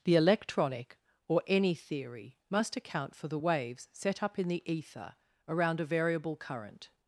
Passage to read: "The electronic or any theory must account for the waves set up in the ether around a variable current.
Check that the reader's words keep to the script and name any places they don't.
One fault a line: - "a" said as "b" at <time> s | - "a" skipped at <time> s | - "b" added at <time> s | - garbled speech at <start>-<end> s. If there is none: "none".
none